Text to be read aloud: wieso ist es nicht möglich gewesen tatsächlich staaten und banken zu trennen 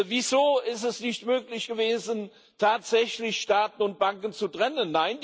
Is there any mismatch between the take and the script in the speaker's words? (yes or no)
no